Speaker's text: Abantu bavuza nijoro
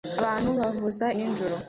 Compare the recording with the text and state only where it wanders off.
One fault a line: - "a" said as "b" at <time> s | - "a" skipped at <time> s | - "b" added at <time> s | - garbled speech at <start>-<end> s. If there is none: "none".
none